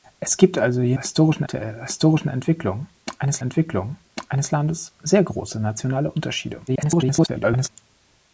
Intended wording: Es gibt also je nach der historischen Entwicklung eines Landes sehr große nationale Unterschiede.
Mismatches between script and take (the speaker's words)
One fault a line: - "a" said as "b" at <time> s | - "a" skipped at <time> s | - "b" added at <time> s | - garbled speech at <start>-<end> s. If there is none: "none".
- "nach" said as "historischen" at 1.0 s
- "Entwicklung eines" added at 3.4 s
- garbled speech at 6.7-7.7 s